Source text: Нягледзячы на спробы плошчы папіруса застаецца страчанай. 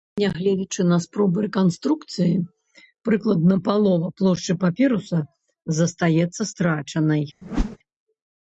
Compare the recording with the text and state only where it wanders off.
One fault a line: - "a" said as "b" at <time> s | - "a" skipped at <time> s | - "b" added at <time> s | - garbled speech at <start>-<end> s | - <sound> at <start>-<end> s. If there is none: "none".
- "рэканструкцыі прыкладна палова" added at 1.4 s
- whoosh at 7.4-7.8 s